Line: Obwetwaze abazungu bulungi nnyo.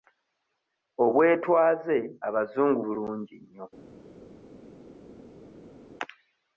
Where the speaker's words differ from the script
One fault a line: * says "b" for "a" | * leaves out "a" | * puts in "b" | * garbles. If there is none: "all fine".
all fine